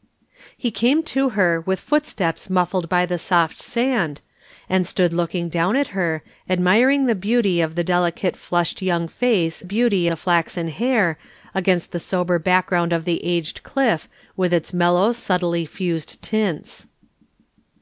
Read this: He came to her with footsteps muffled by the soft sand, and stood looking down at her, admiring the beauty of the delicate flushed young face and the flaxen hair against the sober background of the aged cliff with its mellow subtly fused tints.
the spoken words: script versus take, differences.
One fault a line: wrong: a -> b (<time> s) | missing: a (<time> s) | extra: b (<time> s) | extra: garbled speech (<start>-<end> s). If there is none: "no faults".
wrong: and -> beauty (9.6 s)